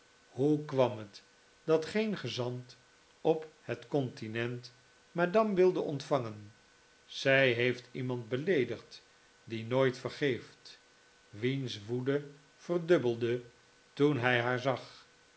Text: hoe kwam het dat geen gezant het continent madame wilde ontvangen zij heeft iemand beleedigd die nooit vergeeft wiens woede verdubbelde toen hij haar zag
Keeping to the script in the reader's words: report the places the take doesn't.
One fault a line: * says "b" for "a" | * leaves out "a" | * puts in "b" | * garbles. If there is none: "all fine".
* puts in "op"